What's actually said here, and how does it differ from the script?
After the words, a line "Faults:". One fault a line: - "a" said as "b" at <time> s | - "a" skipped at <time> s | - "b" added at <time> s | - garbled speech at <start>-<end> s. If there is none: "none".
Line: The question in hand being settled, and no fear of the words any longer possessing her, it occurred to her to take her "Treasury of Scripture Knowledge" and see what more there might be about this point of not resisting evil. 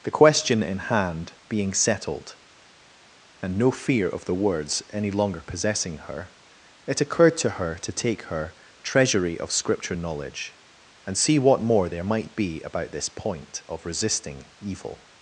The question in hand being settled, and no fear of the words any longer possessing her, it occurred to her to take her "Treasury of Scripture Knowledge" and see what more there might be about this point of resisting evil.
Faults:
- "not" skipped at 13.9 s